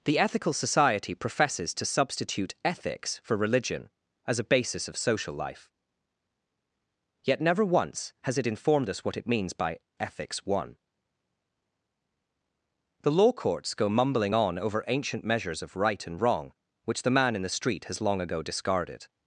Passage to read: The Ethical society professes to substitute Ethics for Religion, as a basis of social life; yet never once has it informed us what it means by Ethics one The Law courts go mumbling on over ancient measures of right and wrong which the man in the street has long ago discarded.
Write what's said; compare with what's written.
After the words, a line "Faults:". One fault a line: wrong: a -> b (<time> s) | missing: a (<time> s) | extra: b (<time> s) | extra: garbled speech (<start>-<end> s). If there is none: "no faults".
The Ethical society professes to substitute Ethics for Religion, as a basis of social life; yet never once has it informed us what it means by Ethics one The Law courts go mumbling on over ancient measures of right and wrong which the man in the street has long ago discarded.
Faults:
no faults